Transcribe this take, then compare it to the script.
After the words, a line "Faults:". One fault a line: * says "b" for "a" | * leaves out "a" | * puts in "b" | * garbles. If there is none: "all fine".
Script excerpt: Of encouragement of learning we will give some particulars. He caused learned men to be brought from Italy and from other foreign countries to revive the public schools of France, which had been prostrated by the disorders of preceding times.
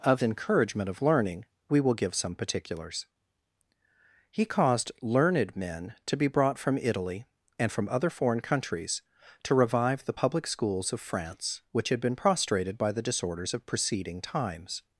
Of encouragement of learning we will give some particulars. He caused learned men to be brought from Italy and from other foreign countries to revive the public schools of France, which had been prostrated by the disorders of preceding times.
Faults:
all fine